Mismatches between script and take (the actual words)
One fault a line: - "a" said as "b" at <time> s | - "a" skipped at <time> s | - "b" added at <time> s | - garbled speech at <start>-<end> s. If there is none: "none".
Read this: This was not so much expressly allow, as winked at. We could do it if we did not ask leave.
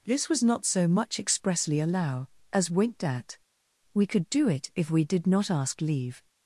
none